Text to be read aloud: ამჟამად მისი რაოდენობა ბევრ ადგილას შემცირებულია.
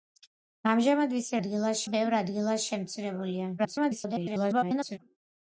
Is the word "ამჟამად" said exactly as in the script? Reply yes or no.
yes